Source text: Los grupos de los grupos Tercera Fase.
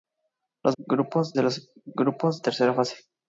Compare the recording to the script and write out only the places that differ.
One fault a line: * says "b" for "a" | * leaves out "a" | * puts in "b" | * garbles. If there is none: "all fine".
all fine